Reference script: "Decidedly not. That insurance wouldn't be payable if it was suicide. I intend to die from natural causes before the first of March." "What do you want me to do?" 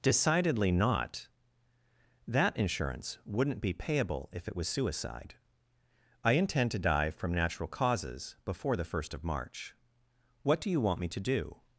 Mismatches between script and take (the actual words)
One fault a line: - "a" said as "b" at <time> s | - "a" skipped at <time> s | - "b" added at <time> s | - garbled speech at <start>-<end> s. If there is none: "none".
none